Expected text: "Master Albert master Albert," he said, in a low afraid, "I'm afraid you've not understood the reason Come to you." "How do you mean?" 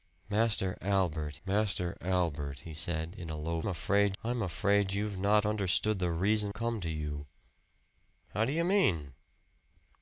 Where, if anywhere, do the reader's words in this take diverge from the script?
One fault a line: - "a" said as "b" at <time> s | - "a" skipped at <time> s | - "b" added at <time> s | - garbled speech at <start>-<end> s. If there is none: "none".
none